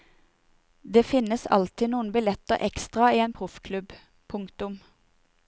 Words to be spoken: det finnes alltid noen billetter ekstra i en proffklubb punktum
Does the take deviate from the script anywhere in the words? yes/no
no